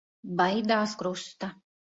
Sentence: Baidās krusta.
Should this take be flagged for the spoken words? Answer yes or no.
no